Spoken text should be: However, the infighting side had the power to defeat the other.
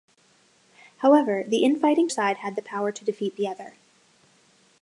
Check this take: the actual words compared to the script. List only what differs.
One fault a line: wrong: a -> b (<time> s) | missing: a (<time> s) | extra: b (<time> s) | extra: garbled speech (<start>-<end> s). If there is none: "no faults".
no faults